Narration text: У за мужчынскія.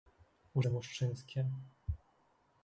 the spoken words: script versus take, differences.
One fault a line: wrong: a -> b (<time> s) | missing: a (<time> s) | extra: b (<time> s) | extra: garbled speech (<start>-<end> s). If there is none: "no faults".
no faults